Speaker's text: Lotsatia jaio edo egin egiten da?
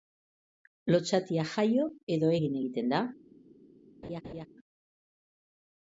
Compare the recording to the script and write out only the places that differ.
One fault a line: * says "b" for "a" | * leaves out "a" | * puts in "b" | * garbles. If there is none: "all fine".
all fine